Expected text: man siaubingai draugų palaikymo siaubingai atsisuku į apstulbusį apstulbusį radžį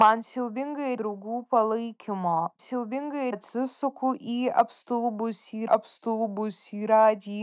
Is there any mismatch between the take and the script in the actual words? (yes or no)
no